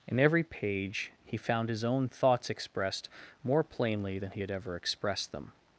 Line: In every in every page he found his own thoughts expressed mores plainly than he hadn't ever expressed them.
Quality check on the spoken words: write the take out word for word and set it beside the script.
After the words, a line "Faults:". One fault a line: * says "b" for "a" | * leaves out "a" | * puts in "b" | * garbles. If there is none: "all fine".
In every page he found his own thoughts expressed more plainly than he had ever expressed them.
Faults:
* leaves out "in every"
* says "more" for "mores"
* says "had" for "hadn't"